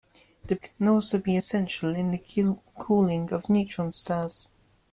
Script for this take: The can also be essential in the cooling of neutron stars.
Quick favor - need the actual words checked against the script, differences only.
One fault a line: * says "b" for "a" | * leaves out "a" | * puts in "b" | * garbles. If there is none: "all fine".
all fine